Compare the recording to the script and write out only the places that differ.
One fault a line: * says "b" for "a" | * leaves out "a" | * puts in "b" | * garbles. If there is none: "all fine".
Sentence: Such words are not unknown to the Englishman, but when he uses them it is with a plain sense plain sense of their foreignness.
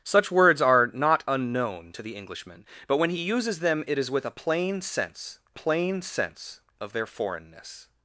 all fine